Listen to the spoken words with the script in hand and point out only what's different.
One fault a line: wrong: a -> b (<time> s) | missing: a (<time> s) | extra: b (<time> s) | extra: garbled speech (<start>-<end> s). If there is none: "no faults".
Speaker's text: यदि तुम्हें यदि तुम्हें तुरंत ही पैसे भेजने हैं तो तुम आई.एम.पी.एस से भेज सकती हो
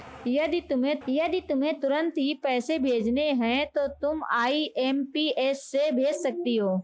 no faults